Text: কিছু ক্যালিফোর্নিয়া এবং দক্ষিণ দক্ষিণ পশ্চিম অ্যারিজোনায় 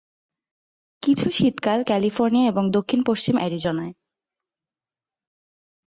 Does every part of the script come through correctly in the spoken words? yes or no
no